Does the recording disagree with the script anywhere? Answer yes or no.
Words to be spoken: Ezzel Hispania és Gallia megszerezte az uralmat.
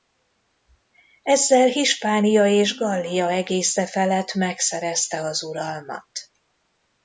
yes